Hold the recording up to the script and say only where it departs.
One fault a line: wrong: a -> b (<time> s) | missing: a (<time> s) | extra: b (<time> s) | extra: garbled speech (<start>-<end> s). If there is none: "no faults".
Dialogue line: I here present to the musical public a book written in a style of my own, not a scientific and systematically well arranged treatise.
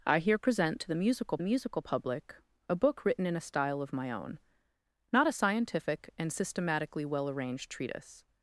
extra: musical (1.4 s)